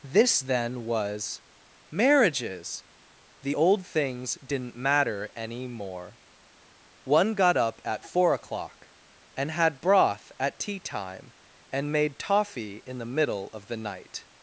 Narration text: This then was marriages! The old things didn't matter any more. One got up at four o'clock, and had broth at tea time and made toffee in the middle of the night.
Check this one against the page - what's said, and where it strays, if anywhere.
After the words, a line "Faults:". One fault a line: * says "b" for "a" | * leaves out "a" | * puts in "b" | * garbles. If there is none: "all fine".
This then was marriages! The old things didn't matter any more. One got up at four o'clock, and had broth at tea time and made toffee in the middle of the night.
Faults:
all fine